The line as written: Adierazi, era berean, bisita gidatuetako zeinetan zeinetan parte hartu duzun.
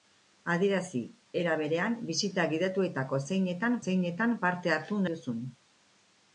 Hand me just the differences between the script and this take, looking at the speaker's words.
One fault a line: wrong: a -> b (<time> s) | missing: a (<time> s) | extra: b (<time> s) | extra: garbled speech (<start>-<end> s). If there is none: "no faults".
no faults